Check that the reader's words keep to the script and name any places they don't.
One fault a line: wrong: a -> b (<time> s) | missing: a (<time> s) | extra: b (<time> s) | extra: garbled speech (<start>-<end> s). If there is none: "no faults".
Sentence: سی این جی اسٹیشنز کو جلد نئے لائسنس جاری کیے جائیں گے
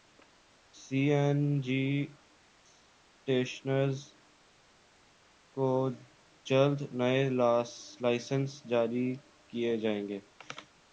no faults